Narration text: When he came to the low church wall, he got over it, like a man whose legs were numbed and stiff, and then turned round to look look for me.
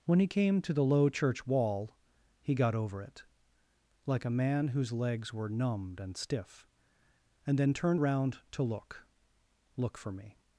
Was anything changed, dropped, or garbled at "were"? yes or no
no